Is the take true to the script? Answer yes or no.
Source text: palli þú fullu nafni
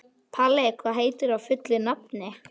no